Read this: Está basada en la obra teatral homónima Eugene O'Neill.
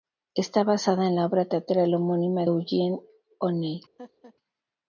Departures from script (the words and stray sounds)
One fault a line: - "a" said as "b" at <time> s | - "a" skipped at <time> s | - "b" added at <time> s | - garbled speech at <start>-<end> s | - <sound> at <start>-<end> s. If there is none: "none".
- laugh at 4.0-4.3 s